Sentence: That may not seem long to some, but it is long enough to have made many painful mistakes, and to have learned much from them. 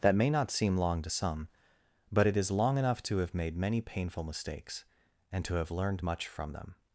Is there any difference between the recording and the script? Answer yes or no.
no